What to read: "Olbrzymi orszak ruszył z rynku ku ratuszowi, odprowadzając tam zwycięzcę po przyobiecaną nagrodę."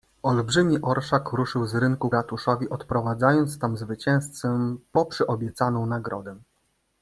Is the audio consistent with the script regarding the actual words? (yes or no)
no